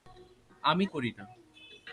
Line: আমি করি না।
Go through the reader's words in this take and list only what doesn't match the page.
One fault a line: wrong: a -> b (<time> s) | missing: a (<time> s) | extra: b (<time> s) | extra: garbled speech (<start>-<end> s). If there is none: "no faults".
no faults